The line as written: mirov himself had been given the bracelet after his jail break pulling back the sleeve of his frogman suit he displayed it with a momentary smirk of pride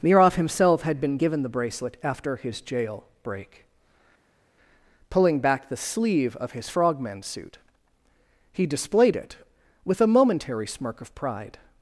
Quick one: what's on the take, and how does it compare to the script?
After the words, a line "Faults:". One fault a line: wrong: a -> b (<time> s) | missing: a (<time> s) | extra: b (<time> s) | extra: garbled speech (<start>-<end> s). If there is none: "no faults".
mirov himself had been given the bracelet after his jail break pulling back the sleeve of his frogman suit he displayed it with a momentary smirk of pride
Faults:
no faults